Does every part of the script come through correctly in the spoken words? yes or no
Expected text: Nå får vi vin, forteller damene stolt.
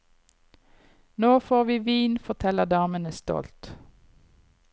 yes